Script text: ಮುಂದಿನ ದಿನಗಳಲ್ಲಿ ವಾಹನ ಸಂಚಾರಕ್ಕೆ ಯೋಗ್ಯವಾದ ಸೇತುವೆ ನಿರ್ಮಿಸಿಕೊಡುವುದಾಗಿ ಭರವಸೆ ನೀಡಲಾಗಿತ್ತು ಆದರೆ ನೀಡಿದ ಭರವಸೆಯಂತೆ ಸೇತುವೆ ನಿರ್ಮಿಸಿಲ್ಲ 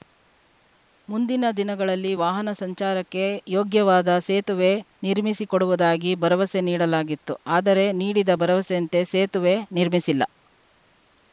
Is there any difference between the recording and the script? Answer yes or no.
no